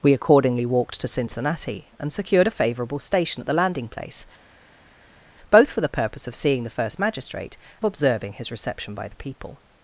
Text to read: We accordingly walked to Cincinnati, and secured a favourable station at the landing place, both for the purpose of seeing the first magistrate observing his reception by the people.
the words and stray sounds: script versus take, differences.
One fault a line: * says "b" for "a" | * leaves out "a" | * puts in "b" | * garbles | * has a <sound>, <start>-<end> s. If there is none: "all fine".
all fine